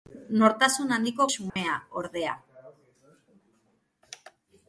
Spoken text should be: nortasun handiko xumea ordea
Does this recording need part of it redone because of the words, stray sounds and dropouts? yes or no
yes